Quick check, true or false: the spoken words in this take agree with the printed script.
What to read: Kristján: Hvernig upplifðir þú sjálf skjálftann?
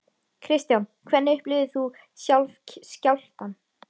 true